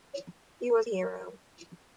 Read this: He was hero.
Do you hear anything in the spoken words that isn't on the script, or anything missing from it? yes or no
no